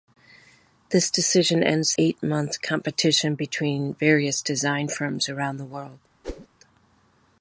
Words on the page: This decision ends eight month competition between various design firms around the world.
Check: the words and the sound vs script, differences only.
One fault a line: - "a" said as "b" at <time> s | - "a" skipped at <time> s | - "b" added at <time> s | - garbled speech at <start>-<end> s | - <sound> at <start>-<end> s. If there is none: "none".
- whoosh at 6.2-6.5 s